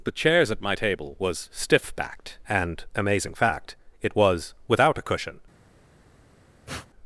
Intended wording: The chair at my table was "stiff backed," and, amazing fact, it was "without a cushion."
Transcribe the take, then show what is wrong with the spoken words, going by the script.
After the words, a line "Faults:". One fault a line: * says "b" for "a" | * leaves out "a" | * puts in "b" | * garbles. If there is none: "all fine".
The chairs at my table was "stiff backed," and, amazing fact, it was "without a cushion."
Faults:
* says "chairs" for "chair"